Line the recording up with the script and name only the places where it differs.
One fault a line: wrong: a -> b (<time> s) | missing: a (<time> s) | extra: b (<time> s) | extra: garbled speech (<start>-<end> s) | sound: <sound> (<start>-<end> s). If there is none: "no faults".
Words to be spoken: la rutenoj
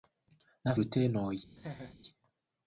sound: laugh (1.6-2.0 s)